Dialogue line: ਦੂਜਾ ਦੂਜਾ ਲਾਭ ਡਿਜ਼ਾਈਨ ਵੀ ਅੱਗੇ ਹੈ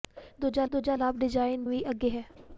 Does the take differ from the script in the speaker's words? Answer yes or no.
no